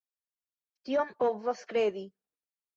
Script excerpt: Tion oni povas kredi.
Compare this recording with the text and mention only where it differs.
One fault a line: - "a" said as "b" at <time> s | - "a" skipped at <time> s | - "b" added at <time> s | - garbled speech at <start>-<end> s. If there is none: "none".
- "oni" skipped at 1.1 s